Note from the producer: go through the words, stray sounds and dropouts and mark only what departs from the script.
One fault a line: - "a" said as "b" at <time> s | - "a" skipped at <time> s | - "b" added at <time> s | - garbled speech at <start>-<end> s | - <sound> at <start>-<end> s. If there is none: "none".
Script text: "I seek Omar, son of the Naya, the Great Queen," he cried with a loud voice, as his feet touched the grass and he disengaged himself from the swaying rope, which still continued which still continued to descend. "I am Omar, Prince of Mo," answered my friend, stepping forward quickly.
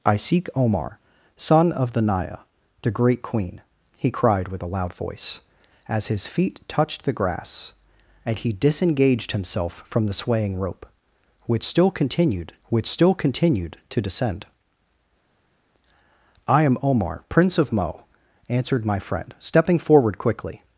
none